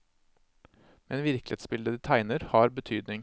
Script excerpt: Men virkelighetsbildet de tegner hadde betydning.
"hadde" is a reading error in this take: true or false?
true